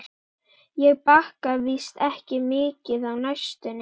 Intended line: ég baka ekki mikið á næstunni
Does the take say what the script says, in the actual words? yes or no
no